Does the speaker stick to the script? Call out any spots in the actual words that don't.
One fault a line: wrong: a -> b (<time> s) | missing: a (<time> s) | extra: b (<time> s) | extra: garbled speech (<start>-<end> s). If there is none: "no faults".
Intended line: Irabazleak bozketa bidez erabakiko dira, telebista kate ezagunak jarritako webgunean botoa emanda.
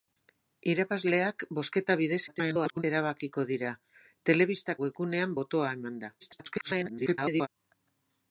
extra: garbled speech (2.3-2.8 s)
missing: kate ezagunak jarritako (4.8 s)
extra: garbled speech (6.2-7.5 s)